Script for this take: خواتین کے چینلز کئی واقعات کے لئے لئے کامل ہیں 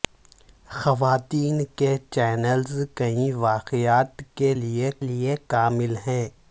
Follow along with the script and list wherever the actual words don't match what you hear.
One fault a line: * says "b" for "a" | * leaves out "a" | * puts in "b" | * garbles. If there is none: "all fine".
all fine